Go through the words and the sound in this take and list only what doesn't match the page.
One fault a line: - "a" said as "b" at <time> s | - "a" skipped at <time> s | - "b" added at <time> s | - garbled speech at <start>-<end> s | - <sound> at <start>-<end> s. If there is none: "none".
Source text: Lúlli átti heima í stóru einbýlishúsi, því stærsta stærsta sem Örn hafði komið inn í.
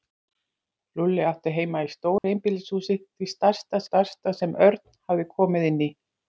- dropout at 2.2-2.2 s